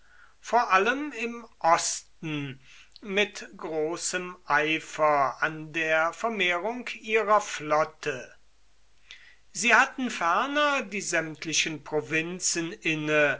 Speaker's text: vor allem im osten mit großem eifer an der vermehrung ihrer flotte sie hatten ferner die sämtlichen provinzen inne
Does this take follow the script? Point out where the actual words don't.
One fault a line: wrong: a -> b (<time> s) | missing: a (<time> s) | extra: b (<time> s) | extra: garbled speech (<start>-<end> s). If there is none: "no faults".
no faults